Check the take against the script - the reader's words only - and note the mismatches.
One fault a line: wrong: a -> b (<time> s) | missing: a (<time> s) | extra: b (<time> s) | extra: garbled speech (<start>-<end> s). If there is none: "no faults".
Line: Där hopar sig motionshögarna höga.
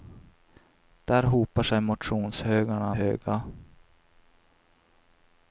no faults